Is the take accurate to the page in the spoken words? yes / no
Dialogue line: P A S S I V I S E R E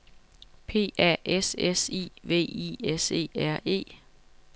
yes